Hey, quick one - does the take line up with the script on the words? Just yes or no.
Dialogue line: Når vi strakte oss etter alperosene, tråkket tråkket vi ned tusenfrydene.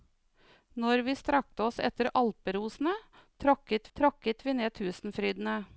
yes